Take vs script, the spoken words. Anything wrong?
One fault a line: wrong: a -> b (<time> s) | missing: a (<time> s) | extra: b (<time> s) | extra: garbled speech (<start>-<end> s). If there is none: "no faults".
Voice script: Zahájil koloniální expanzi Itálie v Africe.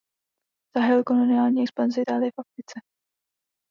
no faults